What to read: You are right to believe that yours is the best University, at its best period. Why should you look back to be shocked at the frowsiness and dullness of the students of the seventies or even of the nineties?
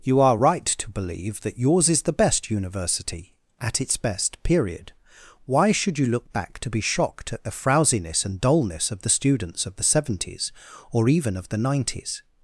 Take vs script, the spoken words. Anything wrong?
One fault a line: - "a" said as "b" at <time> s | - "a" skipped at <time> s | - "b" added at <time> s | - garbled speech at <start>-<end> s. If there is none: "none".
none